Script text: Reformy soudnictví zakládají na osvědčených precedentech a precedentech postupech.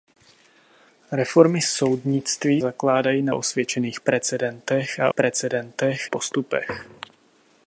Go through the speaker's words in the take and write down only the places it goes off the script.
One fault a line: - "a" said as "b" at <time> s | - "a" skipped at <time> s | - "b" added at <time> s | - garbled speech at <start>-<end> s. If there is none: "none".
none